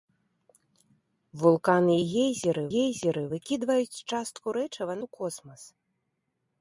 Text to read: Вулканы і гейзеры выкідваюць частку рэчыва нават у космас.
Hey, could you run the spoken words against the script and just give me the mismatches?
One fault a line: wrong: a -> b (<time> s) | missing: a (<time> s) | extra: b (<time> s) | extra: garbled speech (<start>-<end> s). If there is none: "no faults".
extra: гейзеры (2.7 s)
missing: нават (4.9 s)